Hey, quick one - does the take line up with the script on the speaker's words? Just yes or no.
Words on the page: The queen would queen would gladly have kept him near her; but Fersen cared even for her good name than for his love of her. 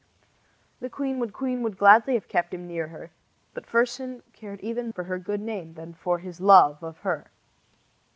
yes